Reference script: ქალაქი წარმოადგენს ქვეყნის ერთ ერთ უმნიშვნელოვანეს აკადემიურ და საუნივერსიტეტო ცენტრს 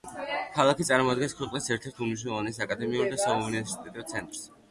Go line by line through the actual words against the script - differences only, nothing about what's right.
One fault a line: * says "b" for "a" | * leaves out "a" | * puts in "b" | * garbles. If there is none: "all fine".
all fine